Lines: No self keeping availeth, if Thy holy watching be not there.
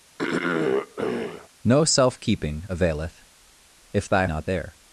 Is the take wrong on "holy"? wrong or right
wrong